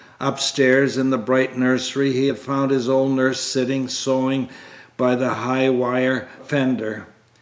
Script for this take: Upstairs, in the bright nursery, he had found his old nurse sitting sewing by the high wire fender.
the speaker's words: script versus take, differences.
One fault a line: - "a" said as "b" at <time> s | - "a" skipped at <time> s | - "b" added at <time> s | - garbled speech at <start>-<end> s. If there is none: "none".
none